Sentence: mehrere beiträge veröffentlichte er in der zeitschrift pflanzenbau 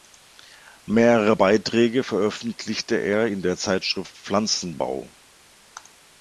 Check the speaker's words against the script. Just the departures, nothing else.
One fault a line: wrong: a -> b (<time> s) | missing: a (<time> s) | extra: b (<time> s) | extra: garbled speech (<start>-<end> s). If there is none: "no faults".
no faults